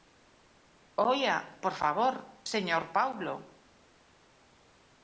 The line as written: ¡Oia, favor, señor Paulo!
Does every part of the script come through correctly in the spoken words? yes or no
no